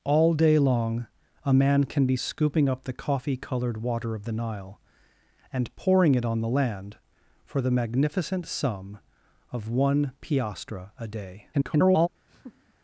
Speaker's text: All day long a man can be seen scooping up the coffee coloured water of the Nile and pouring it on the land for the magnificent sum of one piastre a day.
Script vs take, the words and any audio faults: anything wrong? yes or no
yes